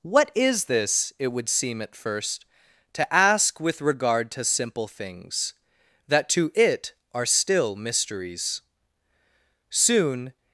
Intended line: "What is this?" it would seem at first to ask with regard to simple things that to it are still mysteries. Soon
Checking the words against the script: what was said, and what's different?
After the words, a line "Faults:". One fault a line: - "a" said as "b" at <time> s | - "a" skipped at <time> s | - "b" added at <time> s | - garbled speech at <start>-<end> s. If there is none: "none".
"What is this?" it would seem at first to ask with regard to simple things that to it are still mysteries. Soon
Faults:
none